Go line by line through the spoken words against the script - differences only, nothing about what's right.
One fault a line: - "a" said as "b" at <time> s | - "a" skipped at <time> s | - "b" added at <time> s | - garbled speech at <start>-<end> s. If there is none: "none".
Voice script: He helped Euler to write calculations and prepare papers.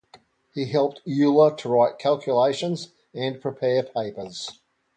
none